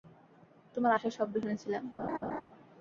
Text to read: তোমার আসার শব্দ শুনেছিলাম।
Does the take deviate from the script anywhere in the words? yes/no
no